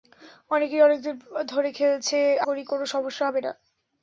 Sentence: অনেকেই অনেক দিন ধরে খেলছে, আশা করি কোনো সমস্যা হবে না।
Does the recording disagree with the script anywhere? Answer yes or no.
yes